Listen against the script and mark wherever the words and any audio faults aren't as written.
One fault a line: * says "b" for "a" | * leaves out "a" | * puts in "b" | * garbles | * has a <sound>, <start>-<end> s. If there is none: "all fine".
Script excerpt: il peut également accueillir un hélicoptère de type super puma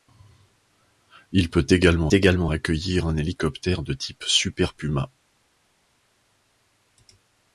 * puts in "également"